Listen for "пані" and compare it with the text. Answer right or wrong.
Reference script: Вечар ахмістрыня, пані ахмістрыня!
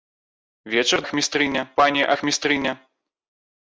right